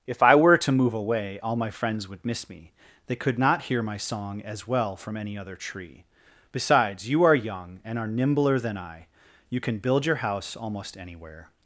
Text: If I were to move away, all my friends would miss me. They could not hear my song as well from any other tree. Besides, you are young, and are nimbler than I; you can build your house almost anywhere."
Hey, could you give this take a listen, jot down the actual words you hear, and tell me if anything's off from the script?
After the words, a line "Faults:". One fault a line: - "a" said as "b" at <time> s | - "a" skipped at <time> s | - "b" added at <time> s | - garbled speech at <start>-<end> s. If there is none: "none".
If I were to move away, all my friends would miss me. They could not hear my song as well from any other tree. Besides, you are young, and are nimbler than I; you can build your house almost anywhere."
Faults:
none